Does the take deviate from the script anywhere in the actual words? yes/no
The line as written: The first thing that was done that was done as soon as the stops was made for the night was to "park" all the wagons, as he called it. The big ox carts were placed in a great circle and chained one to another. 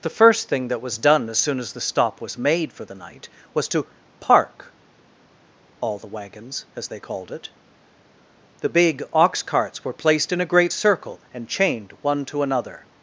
yes